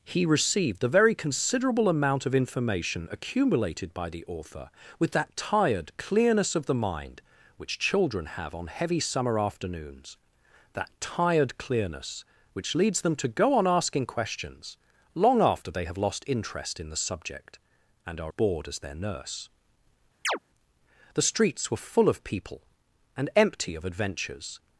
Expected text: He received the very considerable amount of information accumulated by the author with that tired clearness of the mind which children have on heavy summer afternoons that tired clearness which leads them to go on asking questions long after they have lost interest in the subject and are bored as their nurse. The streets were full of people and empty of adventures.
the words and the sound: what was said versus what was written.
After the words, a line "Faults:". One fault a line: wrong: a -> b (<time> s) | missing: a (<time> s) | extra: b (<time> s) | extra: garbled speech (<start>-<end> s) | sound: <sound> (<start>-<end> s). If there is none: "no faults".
He received the very considerable amount of information accumulated by the author with that tired clearness of the mind which children have on heavy summer afternoons that tired clearness which leads them to go on asking questions long after they have lost interest in the subject and are bored as their nurse. The streets were full of people and empty of adventures.
Faults:
sound: chirp (20.2-20.4 s)